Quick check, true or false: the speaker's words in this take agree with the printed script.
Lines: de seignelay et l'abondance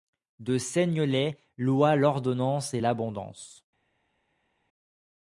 false